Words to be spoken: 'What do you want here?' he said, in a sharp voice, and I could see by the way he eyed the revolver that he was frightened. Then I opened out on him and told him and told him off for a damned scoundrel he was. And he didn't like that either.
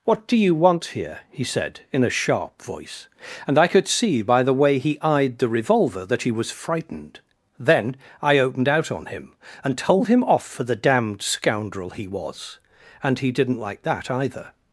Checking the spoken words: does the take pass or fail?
fail